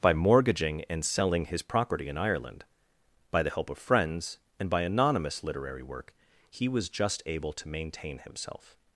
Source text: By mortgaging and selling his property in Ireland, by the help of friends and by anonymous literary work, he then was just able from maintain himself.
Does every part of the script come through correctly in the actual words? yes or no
no